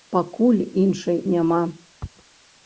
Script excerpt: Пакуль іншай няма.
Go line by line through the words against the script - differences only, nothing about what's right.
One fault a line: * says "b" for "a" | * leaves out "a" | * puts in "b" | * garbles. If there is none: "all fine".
all fine